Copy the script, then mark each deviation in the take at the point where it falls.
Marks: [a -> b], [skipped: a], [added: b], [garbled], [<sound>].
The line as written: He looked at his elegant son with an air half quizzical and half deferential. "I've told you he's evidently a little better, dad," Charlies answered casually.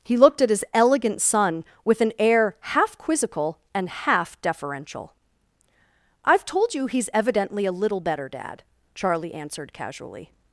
He looked at his elegant son with an air half quizzical and half deferential. "I've told you he's evidently a little better, dad," [Charlies -> Charlie] answered casually.